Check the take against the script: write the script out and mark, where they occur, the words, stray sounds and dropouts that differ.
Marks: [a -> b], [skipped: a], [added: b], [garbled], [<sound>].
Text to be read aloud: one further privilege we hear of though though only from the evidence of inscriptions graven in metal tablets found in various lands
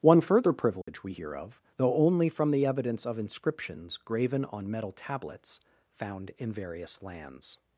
one further privilege [dropout] we hear of though [skipped: though] only from the evidence of inscriptions graven [in -> on] metal tablets found in various lands